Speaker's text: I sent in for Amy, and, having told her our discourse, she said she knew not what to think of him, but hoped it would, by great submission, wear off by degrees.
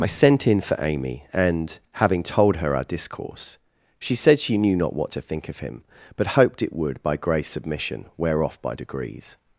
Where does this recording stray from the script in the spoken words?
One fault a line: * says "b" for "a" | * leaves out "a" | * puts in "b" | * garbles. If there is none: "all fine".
* says "grey" for "great"